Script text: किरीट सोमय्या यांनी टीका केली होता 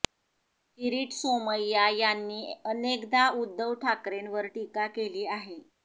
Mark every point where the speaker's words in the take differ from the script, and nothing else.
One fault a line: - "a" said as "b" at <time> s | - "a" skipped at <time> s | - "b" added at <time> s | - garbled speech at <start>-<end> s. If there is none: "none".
- "अनेकदा उद्धव ठाकरेंवर" added at 2.6 s
- "होता" said as "आहे" at 5.3 s